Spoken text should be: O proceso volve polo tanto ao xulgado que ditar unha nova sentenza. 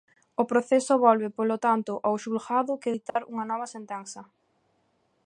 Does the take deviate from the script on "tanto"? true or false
false